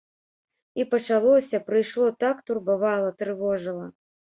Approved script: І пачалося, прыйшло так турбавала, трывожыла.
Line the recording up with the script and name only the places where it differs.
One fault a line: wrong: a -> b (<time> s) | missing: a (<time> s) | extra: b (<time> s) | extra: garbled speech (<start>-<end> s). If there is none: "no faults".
no faults